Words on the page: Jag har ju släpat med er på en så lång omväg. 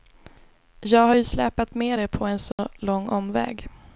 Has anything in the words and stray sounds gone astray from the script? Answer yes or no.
yes